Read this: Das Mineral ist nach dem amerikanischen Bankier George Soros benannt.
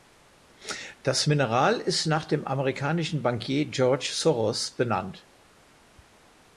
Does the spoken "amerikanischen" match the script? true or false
true